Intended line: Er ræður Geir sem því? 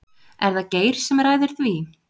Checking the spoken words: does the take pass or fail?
fail